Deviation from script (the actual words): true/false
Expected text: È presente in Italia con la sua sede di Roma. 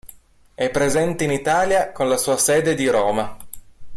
false